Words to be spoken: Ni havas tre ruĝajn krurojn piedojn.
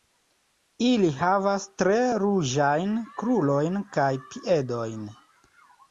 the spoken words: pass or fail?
fail